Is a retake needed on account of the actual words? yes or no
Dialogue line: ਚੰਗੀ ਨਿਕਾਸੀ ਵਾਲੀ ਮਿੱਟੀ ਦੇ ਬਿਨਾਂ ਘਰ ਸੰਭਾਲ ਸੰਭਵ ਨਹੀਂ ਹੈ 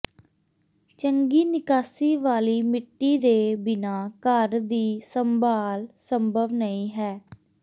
yes